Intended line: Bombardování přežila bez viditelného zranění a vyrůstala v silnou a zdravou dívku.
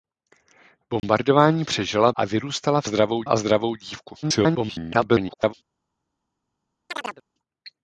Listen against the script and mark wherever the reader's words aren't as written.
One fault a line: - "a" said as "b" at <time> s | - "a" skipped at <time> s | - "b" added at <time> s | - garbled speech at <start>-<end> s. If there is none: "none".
- "bez viditelného zranění" skipped at 2.1 s
- "silnou" said as "zdravou" at 2.8 s
- garbled speech at 4.2-5.5 s